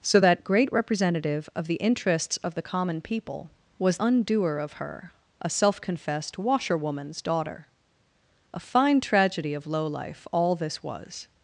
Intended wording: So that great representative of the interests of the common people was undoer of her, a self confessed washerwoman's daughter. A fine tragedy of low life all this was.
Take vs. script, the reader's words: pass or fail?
pass